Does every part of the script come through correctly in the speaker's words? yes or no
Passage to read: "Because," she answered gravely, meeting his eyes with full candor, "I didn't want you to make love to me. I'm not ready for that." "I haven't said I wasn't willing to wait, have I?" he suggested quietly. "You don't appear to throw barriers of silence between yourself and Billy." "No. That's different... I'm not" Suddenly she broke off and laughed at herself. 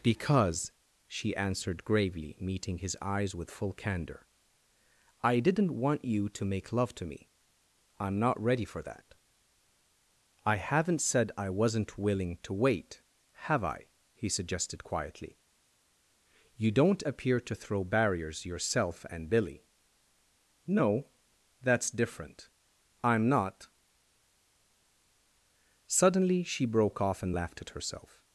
no